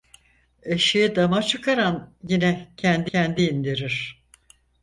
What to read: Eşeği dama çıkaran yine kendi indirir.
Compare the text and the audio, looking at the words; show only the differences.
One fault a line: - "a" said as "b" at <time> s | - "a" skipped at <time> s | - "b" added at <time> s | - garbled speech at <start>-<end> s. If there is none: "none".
- "kendi" added at 3.1 s